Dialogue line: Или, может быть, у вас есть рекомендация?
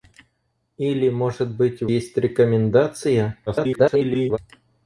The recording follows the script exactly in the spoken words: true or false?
false